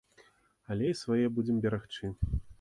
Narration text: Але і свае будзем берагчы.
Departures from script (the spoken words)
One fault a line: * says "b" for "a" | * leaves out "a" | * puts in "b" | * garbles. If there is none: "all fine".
all fine